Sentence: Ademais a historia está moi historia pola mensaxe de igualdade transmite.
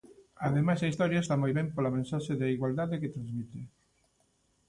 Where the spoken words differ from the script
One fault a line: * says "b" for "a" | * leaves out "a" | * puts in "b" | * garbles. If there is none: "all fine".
* says "ben" for "historia"
* puts in "que"